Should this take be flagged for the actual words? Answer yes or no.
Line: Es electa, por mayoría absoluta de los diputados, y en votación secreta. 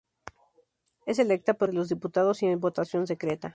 yes